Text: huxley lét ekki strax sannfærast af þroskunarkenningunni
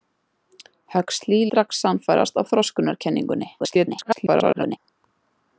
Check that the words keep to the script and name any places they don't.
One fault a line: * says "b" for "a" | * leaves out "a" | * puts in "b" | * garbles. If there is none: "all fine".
* leaves out "lét ekki"
* garbles